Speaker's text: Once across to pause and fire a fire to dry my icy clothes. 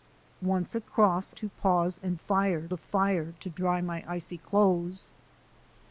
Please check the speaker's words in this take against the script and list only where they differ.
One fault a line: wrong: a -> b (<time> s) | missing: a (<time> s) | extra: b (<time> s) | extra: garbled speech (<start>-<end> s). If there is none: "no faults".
no faults